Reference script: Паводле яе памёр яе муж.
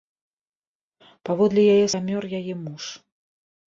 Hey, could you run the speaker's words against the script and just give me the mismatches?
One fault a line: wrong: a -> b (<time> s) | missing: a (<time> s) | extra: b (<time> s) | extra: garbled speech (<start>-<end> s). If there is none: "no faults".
no faults